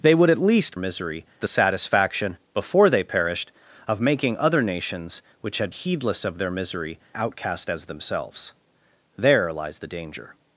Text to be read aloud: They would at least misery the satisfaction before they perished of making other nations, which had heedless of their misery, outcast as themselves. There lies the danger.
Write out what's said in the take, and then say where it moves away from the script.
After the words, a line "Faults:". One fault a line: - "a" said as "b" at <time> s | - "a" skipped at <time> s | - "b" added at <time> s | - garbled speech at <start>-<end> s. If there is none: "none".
They would at least misery the satisfaction before they perished of making other nations, which had heedless of their misery, outcast as themselves. There lies the danger.
Faults:
none